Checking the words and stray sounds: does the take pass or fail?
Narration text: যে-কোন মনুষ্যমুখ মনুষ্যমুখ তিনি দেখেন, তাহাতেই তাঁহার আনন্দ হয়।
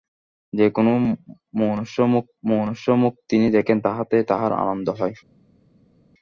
pass